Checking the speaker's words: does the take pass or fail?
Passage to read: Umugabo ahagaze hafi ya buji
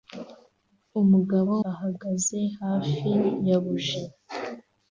pass